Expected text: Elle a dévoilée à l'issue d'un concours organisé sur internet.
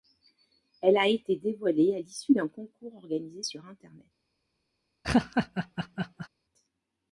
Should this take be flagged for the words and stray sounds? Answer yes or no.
yes